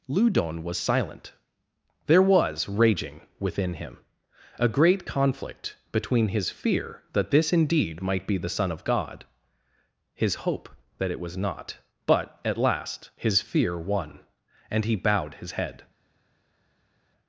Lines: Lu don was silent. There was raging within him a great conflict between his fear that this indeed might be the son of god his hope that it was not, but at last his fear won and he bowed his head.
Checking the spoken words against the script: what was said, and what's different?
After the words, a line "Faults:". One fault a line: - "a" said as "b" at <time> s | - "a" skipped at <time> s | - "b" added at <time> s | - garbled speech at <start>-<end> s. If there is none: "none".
Lu don was silent. There was raging within him a great conflict between his fear that this indeed might be the son of god his hope that it was not, but at last his fear won and he bowed his head.
Faults:
none